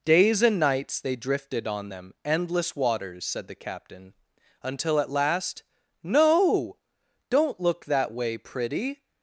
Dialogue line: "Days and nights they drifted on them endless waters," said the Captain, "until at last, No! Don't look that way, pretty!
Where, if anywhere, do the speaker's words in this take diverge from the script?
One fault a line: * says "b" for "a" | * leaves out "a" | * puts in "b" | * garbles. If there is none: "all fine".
all fine